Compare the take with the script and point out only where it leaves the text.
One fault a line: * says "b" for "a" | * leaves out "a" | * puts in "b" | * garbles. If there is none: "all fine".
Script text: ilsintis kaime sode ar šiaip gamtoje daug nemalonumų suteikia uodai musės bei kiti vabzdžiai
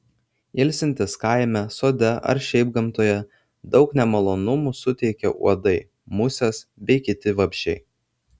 all fine